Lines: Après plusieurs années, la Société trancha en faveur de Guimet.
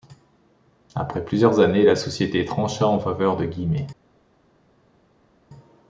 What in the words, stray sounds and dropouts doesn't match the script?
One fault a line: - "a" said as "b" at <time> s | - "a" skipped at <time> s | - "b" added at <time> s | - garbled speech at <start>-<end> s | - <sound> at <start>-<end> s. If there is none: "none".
none